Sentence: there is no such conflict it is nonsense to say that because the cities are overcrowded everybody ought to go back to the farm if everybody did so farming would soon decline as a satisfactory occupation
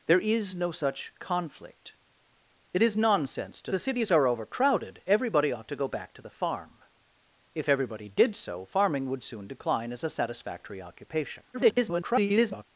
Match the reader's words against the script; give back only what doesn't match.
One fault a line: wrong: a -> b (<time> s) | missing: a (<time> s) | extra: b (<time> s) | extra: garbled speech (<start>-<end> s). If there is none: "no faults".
missing: say that because (3.7 s)
extra: garbled speech (11.5-12.7 s)